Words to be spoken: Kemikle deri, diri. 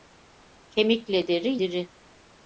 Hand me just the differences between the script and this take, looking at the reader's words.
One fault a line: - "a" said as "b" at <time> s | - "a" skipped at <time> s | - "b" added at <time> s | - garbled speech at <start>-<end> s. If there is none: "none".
none